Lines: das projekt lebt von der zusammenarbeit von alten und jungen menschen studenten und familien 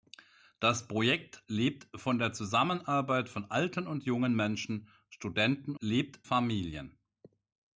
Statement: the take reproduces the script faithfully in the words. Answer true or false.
false